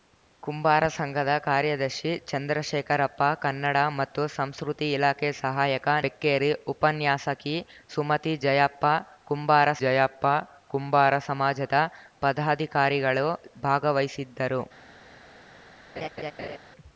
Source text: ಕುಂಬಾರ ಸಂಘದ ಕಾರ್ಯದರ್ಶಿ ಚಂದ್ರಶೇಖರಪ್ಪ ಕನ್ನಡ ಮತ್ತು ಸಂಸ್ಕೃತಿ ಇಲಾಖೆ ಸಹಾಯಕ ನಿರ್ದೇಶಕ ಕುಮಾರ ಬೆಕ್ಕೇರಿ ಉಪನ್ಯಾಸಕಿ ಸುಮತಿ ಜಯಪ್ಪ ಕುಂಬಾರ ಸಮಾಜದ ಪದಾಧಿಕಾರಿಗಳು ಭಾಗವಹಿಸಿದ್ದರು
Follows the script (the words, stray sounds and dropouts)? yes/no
no